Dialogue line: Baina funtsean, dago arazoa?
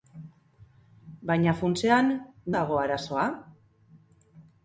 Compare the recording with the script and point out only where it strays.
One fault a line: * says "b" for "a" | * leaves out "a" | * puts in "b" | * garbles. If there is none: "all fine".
all fine